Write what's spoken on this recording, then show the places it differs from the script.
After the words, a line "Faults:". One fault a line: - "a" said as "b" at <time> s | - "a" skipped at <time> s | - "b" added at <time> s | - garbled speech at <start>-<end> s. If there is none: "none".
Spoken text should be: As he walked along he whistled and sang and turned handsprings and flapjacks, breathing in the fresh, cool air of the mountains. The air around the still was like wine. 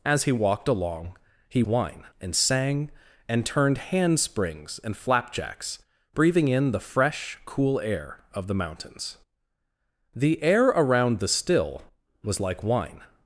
As he walked along he wine and sang and turned handsprings and flapjacks, breathing in the fresh, cool air of the mountains. The air around the still was like wine.
Faults:
- "whistled" said as "wine" at 1.7 s